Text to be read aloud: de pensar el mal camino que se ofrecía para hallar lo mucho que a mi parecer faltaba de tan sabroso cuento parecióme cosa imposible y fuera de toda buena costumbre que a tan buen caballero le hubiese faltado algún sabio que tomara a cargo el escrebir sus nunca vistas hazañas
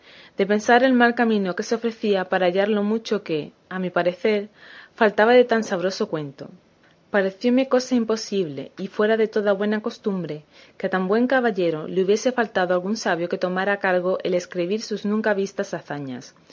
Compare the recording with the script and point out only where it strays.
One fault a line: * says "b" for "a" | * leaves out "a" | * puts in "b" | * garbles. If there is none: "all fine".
all fine